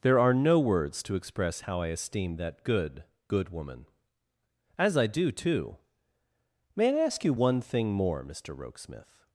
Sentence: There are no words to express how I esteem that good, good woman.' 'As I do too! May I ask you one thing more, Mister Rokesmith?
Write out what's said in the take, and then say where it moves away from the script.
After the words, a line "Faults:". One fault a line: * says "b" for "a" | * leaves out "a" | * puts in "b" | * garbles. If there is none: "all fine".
There are no words to express how I esteem that good, good woman.' 'As I do too! May I ask you one thing more, Mister Rokesmith?
Faults:
all fine